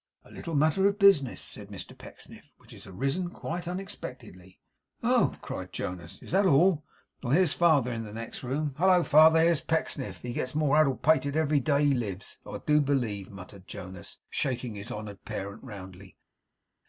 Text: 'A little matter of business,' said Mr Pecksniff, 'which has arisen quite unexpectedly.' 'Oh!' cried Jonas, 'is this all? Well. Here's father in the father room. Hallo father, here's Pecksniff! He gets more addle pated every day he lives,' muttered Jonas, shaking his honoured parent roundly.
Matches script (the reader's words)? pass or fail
fail